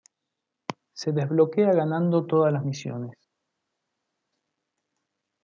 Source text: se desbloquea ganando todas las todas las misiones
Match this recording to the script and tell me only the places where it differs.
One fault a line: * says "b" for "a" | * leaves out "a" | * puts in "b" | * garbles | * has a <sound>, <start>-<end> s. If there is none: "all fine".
* leaves out "todas las"